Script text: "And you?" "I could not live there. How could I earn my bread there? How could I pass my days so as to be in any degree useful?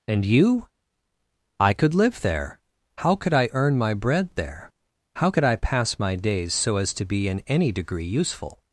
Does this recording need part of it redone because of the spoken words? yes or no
yes